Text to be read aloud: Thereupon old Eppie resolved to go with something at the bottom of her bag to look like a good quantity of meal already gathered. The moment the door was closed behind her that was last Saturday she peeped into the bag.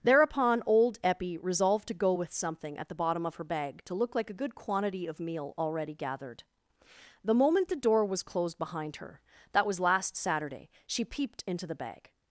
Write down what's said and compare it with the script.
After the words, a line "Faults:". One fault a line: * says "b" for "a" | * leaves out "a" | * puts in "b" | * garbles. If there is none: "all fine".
Thereupon old Eppie resolved to go with something at the bottom of her bag to look like a good quantity of meal already gathered. The moment the door was closed behind her that was last Saturday she peeped into the bag.
Faults:
all fine